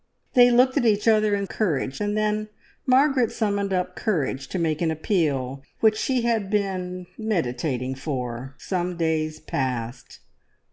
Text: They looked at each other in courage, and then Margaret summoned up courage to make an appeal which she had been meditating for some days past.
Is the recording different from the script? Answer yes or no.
no